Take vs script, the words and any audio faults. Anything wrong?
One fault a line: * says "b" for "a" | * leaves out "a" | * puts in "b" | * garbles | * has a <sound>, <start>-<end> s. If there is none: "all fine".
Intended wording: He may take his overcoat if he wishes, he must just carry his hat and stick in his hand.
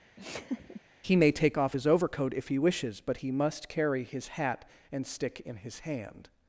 * has a laugh, 0.2-0.8 s
* puts in "off"
* puts in "but"
* leaves out "just"